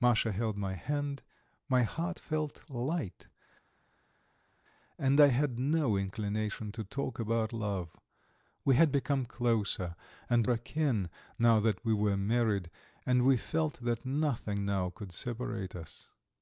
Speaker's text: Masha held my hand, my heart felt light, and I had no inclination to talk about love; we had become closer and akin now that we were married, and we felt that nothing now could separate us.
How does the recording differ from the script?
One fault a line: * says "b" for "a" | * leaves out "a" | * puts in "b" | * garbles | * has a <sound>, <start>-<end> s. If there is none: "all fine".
all fine